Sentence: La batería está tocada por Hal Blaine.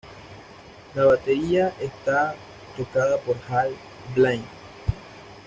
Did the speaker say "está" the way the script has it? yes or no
yes